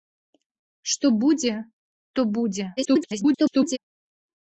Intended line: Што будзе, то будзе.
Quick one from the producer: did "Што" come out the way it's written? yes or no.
yes